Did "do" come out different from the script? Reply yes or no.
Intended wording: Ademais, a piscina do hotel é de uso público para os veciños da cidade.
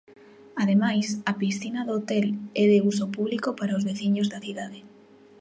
no